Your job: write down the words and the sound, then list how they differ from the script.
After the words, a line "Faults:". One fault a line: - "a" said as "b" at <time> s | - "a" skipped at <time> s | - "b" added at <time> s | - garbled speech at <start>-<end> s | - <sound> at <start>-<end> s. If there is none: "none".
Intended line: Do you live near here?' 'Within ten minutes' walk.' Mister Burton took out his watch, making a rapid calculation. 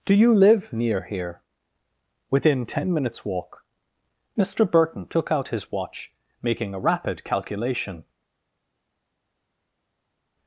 Do you live near here?' 'Within ten minutes' walk.' Mister Burton took out his watch, making a rapid calculation.
Faults:
none